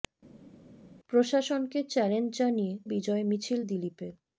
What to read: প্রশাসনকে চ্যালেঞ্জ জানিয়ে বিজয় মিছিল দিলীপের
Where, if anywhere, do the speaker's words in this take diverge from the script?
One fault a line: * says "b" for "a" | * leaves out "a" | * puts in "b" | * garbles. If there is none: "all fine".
all fine